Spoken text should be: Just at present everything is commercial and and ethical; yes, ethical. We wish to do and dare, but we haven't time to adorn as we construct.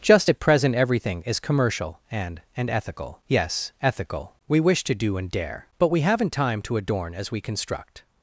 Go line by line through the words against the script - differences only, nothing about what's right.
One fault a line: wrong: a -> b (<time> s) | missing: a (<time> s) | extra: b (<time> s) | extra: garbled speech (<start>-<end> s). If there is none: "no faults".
no faults